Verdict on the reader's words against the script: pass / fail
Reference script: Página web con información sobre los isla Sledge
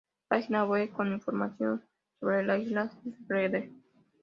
fail